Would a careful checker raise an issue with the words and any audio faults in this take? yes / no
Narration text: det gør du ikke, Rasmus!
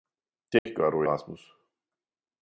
yes